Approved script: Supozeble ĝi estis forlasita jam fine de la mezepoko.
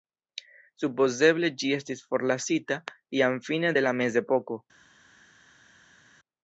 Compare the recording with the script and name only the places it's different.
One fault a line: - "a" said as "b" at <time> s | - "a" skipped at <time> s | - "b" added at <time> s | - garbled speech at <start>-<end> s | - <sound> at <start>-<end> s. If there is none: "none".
none